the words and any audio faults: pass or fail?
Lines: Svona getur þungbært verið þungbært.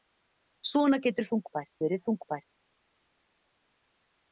pass